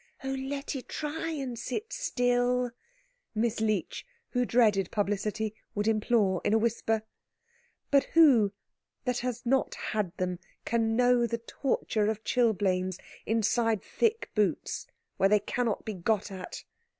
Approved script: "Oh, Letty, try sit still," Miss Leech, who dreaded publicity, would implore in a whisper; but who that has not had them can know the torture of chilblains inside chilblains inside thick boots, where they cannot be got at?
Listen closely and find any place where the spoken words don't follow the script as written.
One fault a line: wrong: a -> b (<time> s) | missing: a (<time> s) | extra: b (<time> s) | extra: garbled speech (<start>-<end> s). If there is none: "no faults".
extra: and (1.3 s)
missing: chilblains inside (13.8 s)